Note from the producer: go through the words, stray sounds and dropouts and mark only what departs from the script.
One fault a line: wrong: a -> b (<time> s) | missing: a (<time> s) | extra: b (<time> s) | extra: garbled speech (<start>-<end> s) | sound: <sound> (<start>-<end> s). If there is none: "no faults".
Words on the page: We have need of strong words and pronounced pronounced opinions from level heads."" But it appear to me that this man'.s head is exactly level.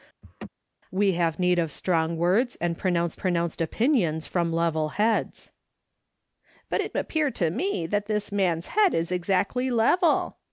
sound: laugh (0.2-0.5 s)